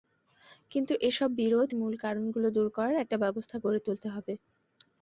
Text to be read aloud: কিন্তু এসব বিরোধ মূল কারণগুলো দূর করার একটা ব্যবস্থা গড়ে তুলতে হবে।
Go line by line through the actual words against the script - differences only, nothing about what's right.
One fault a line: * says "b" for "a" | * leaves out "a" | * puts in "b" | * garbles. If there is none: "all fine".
all fine